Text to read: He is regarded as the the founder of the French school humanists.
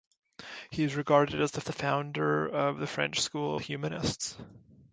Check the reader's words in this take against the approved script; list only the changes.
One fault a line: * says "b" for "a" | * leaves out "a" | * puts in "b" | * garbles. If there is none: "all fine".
all fine